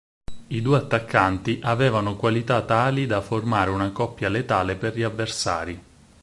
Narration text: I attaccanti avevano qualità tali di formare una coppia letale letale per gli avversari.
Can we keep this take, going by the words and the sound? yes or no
no